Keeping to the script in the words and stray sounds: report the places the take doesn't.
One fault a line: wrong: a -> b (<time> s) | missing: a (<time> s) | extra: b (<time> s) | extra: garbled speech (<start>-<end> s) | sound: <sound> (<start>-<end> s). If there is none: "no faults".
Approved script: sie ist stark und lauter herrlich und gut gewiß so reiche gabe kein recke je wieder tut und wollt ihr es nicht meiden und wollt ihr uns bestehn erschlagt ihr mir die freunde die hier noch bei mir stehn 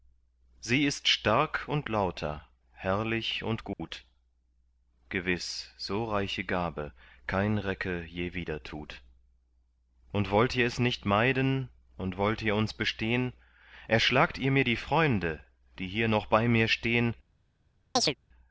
sound: dropout (3.7-3.8 s)
sound: chirp (18.0-18.2 s)